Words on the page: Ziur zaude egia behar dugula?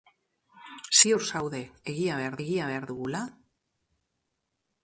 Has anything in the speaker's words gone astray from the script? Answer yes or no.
yes